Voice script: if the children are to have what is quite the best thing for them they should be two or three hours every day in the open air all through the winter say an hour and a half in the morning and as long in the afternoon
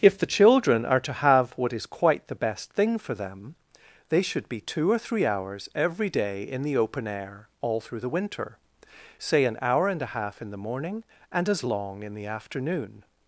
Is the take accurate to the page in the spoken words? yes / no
yes